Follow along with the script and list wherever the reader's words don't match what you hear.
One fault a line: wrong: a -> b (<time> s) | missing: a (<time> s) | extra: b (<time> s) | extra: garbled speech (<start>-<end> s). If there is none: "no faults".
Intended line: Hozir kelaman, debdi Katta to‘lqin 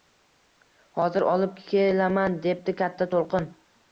extra: olib (1.3 s)